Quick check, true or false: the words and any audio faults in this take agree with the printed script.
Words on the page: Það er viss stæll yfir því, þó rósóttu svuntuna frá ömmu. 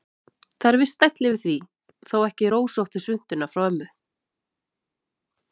false